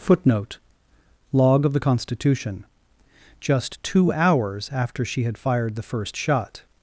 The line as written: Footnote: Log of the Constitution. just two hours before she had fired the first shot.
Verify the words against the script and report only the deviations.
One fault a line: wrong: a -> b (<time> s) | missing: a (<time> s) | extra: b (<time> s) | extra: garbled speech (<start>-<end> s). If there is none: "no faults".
wrong: before -> after (4.7 s)